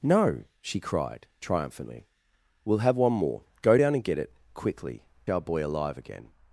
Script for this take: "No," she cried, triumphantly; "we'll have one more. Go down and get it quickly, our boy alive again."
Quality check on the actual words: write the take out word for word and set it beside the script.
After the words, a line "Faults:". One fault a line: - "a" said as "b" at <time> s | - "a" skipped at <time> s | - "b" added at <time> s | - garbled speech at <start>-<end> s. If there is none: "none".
"No," she cried, triumphantly; "we'll have one more. Go down and get it quickly, our boy alive again."
Faults:
none